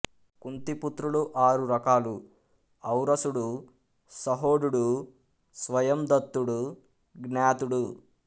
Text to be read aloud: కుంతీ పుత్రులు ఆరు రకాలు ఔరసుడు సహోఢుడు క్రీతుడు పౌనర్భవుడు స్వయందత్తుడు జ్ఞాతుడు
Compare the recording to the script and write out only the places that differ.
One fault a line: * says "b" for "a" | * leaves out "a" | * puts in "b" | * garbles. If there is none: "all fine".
* leaves out "క్రీతుడు పౌనర్భవుడు"